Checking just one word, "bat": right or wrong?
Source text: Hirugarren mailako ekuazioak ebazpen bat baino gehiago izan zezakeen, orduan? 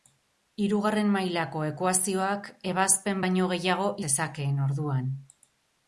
wrong